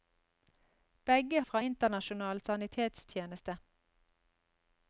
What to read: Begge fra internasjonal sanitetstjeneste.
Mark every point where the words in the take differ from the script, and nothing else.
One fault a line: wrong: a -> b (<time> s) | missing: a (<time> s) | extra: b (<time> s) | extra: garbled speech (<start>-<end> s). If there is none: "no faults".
no faults